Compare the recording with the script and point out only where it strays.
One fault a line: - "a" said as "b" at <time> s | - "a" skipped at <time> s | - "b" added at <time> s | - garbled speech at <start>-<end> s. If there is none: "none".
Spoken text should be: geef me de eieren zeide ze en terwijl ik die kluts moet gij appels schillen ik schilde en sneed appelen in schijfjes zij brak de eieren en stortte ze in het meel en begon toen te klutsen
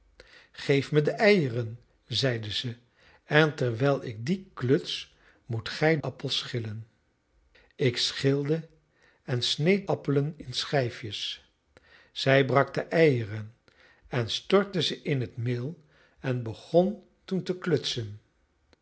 none